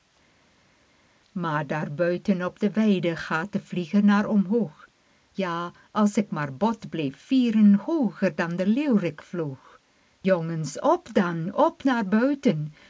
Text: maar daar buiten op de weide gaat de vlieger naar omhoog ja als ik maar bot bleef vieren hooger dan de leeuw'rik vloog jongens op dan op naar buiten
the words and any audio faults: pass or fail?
pass